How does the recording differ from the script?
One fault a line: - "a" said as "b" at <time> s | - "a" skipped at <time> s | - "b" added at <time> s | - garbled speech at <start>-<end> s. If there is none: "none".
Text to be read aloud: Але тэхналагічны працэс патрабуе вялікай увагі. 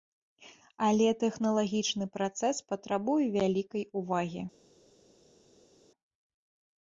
none